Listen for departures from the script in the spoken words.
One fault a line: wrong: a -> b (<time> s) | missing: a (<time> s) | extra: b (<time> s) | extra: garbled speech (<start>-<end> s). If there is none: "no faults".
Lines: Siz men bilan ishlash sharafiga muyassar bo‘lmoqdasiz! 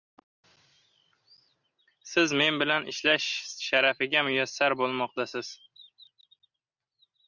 no faults